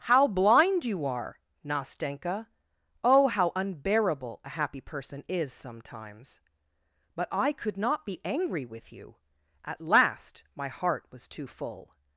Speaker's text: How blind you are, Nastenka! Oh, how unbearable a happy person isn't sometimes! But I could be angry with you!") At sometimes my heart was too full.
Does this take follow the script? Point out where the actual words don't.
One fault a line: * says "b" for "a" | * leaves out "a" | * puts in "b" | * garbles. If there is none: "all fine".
* says "is" for "isn't"
* puts in "not"
* says "last" for "sometimes"